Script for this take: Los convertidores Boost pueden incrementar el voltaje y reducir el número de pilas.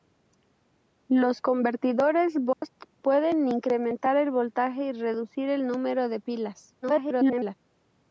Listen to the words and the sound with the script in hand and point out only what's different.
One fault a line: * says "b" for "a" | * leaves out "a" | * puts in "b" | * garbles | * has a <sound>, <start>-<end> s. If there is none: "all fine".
* has a dropout, 2.5-2.6 s
* garbles